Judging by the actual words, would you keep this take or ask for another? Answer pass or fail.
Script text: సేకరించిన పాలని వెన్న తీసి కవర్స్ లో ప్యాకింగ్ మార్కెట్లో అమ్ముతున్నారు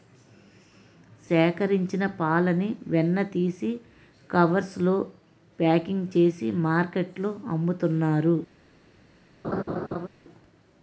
fail